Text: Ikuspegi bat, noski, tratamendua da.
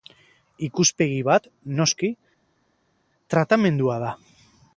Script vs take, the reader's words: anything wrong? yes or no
no